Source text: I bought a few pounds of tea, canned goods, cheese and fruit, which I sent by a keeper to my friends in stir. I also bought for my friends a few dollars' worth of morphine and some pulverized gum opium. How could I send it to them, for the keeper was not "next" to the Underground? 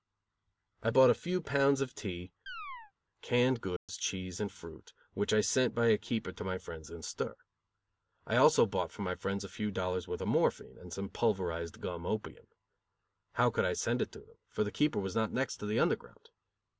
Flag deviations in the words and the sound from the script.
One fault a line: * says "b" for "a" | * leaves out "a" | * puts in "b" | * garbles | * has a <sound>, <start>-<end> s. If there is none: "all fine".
* has a chirp, 2.5-2.9 s
* has a dropout, 3.8-3.9 s